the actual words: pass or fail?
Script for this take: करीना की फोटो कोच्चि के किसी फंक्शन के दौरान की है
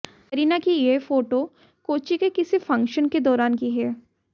fail